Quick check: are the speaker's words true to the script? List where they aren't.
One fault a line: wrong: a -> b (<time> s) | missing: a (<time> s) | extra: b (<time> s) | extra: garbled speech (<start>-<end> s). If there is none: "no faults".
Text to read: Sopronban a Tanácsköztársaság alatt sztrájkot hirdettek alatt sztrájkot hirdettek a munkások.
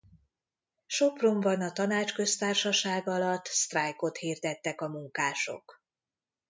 missing: alatt sztrájkot hirdettek (4.8 s)